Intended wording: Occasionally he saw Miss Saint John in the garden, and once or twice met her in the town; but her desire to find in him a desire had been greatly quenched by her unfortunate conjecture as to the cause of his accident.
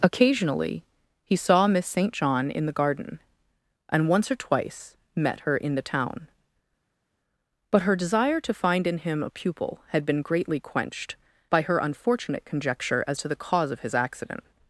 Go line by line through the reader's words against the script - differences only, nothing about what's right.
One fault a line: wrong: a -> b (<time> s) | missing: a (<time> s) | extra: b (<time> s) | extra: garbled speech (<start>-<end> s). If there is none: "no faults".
wrong: desire -> pupil (9.3 s)